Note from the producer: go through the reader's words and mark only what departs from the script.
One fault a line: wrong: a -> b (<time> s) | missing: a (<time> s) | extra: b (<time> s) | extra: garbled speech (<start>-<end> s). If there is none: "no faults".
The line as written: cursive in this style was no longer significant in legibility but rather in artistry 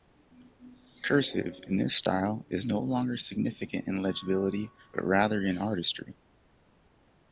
wrong: was -> is (2.5 s)